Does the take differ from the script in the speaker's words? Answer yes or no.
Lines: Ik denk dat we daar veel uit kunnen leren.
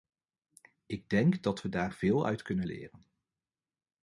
no